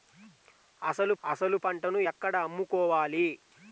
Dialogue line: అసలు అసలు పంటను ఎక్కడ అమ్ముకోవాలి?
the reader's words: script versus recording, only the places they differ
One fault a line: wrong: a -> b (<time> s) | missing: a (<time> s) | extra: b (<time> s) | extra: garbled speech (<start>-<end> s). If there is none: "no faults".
no faults